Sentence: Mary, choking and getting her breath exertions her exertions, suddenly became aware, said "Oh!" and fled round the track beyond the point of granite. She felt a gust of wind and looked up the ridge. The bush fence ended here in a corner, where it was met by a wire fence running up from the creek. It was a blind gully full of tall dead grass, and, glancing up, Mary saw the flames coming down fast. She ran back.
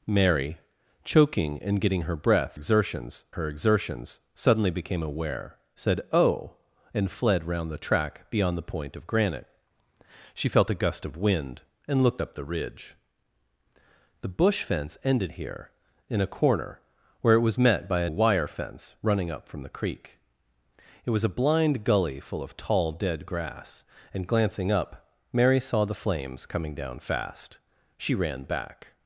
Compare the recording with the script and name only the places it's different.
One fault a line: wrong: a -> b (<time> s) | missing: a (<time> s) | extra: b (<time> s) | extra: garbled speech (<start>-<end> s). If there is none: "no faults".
no faults